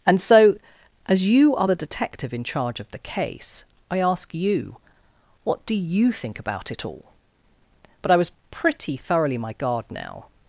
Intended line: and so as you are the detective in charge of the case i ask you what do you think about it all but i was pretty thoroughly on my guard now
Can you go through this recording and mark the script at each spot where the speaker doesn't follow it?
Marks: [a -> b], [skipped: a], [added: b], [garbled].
and so as you are the detective in charge of the case i ask you what do you think about it all but i was pretty thoroughly [skipped: on] my guard now